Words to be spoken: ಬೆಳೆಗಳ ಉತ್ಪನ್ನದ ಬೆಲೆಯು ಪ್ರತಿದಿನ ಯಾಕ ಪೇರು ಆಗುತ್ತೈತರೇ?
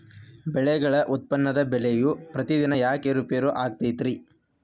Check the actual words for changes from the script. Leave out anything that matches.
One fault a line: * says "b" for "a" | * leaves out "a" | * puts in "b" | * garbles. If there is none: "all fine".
* puts in "ಏರು"